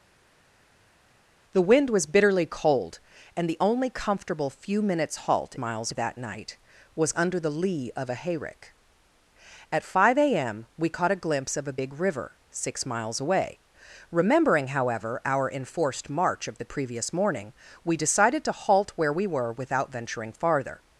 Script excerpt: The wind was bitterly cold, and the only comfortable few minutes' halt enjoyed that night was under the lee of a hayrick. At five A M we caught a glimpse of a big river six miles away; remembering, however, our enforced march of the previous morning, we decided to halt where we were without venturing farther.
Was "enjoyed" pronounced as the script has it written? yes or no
no